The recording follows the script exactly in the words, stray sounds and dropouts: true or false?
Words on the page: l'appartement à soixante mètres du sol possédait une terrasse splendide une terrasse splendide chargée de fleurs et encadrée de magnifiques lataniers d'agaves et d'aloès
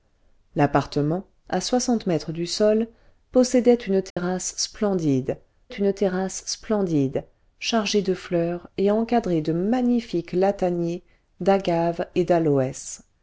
false